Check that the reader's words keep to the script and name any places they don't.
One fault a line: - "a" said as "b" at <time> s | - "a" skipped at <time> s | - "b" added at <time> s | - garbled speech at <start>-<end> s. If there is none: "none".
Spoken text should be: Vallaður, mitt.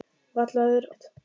none